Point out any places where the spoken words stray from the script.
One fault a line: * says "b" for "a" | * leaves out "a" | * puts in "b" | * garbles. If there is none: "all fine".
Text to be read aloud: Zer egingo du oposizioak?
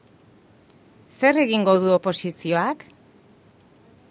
all fine